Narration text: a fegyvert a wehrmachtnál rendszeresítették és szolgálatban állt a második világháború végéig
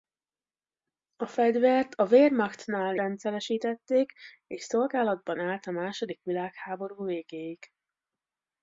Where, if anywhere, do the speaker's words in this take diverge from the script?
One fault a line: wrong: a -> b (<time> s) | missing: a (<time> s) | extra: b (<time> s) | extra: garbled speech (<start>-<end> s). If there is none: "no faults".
no faults